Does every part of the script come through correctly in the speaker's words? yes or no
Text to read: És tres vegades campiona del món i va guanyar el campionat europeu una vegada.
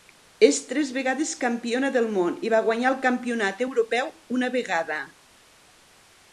yes